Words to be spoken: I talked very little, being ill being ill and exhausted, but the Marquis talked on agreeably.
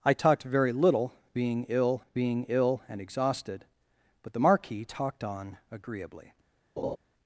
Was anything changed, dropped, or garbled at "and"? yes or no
no